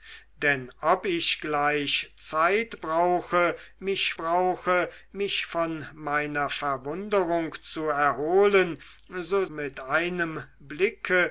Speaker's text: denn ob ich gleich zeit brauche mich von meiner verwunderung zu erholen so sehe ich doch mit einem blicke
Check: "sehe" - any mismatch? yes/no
yes